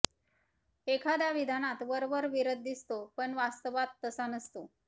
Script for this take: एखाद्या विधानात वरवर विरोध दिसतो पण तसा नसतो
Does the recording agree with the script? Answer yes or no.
no